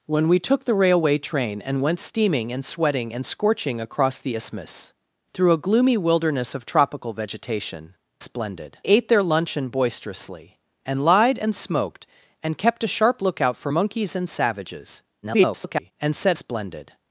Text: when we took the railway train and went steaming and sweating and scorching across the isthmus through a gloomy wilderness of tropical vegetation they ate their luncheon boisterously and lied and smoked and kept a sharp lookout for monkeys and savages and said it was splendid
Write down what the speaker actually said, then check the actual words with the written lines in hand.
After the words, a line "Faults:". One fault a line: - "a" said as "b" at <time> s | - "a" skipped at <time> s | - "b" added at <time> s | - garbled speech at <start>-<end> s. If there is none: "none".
when we took the railway train and went steaming and sweating and scorching across the isthmus through a gloomy wilderness of tropical vegetation splendid ate their luncheon boisterously and lied and smoked and kept a sharp lookout for monkeys and savages [garbled] and said splendid
Faults:
- "they" said as "splendid" at 8.2 s
- garbled speech at 15.2-15.9 s
- "it was" skipped at 16.4 s